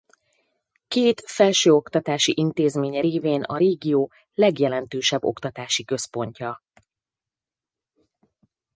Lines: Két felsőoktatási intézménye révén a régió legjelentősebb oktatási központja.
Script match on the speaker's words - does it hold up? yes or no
yes